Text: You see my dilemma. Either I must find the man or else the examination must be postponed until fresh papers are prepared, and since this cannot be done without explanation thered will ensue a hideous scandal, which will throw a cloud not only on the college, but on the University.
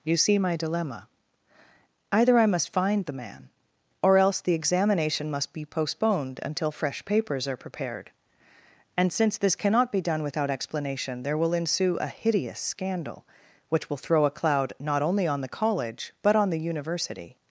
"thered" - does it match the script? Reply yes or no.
no